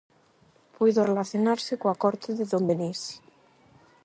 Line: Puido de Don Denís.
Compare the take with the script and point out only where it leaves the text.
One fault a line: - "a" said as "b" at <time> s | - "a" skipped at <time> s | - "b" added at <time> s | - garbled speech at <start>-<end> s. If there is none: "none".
- "relacionarse coa corte" added at 1.1 s